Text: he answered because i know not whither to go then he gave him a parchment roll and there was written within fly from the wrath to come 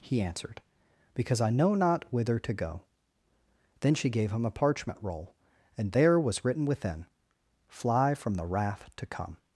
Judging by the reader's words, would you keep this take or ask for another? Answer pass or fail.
fail